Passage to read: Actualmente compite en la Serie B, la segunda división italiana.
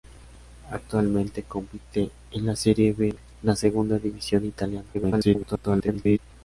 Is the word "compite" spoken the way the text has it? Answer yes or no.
yes